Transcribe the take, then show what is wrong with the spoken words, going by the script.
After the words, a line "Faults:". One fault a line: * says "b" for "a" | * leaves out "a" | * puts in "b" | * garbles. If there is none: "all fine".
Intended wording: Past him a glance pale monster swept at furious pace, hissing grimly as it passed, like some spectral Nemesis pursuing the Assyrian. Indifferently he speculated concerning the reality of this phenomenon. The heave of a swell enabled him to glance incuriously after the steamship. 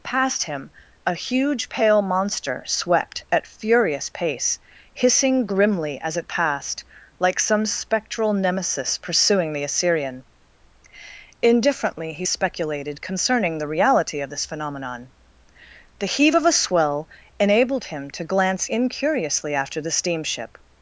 Past him a huge pale monster swept at furious pace, hissing grimly as it passed, like some spectral Nemesis pursuing the Assyrian. Indifferently he speculated concerning the reality of this phenomenon. The heave of a swell enabled him to glance incuriously after the steamship.
Faults:
* says "huge" for "glance"